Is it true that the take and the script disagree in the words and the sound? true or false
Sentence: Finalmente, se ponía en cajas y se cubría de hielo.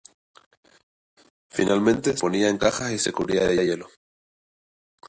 true